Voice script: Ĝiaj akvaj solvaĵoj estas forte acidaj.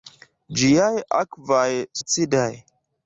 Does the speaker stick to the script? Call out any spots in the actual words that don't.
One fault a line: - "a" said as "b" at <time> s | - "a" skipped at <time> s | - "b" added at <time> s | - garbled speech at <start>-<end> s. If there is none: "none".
- "solvaĵoj estas forte" skipped at 1.7 s